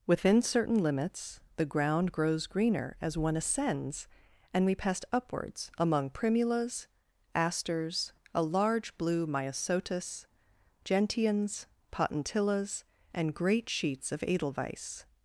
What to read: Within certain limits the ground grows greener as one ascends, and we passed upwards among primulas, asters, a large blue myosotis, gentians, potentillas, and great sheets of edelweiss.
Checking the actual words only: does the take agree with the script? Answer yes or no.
yes